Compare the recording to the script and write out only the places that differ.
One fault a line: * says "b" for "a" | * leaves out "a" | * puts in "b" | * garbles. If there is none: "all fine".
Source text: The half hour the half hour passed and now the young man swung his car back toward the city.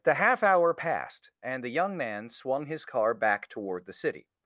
* leaves out "the half hour"
* leaves out "now"